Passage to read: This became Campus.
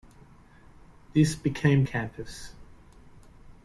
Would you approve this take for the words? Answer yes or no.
yes